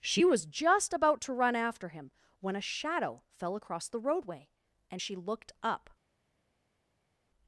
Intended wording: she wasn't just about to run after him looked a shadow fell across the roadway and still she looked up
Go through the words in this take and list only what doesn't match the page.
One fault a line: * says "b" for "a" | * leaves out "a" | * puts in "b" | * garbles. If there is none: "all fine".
* says "was" for "wasn't"
* says "when" for "looked"
* leaves out "still"